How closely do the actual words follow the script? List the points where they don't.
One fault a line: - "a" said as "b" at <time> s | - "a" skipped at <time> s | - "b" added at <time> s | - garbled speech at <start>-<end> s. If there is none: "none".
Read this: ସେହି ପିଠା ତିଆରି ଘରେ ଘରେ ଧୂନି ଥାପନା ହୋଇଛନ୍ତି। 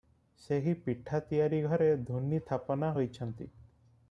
- "ଘରେ" skipped at 1.9 s